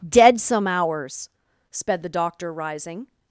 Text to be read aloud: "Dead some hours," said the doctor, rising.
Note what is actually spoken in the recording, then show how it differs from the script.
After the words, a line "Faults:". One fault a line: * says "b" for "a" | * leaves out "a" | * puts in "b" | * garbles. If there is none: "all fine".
"Dead some hours," sped the doctor, rising.
Faults:
* says "sped" for "said"